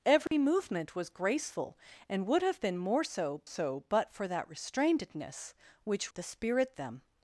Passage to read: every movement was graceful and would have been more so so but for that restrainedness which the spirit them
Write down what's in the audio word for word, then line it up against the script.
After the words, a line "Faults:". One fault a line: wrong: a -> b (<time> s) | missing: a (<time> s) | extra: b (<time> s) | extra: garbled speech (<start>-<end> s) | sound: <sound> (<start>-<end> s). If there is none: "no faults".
every movement was graceful and would have been more so so but for that restrainedness which the spirit them
Faults:
sound: dropout (0.3-0.3 s)